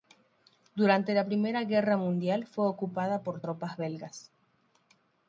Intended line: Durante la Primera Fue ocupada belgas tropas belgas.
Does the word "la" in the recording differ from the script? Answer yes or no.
no